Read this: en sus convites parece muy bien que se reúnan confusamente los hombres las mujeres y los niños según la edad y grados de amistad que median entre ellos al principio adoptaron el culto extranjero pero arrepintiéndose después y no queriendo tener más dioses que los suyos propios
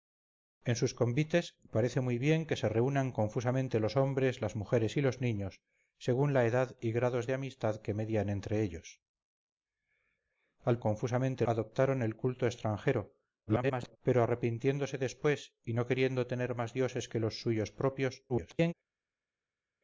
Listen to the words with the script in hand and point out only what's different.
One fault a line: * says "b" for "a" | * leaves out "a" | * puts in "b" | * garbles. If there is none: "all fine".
* says "confusamente" for "principio"
* garbles
* garbles